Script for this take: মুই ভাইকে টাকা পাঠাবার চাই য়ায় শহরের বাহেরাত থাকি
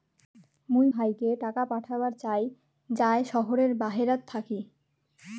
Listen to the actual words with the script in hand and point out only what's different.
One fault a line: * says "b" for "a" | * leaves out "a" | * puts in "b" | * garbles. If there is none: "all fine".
all fine